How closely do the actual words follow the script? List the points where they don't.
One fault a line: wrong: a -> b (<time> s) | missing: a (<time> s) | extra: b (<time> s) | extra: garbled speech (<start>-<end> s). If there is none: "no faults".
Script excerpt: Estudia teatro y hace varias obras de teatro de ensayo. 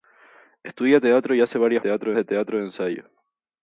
wrong: obras -> teatro (1.8 s)